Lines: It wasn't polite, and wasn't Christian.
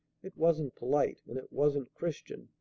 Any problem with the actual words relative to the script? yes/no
yes